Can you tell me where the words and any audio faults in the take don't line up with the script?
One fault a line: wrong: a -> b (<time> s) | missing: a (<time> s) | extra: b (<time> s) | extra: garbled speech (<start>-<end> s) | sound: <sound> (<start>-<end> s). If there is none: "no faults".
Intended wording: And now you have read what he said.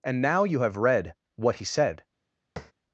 sound: tap (2.6-2.7 s)